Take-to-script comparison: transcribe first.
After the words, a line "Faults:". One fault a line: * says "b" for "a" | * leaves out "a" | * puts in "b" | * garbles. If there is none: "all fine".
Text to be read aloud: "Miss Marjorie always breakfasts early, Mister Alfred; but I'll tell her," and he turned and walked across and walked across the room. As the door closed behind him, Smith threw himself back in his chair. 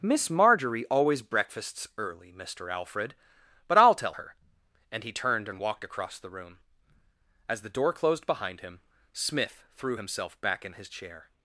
"Miss Marjorie always breakfasts early, Mister Alfred; but I'll tell her," and he turned and walked across the room. As the door closed behind him, Smith threw himself back in his chair.
Faults:
* leaves out "and walked across"